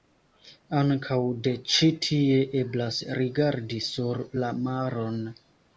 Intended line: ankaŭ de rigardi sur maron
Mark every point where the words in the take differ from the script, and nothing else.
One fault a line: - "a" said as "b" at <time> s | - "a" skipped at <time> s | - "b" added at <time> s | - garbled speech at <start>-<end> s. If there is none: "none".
- "ĉi tie eblas" added at 1.8 s
- "la" added at 4.4 s